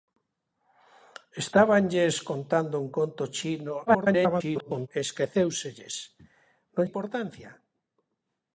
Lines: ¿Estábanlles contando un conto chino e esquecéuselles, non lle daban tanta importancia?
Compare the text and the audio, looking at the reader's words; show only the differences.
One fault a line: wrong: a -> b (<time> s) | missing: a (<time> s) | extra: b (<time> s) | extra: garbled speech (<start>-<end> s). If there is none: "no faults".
extra: garbled speech (3.9-4.9 s)
missing: lle daban tanta (6.8 s)